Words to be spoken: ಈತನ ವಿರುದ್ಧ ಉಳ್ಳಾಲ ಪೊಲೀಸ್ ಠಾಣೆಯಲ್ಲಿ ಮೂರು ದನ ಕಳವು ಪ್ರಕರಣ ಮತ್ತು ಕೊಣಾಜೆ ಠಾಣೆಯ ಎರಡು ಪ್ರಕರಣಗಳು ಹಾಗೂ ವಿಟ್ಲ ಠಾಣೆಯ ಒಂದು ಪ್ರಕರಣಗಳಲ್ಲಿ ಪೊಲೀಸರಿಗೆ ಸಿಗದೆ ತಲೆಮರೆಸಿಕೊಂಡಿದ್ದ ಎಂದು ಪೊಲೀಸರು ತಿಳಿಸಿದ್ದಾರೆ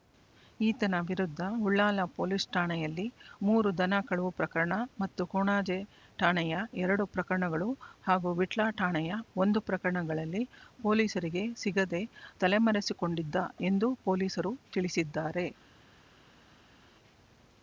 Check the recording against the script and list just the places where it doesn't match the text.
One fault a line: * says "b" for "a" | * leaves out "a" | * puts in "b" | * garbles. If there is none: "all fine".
all fine